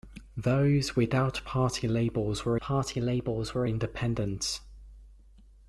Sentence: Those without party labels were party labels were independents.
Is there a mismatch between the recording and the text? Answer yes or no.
no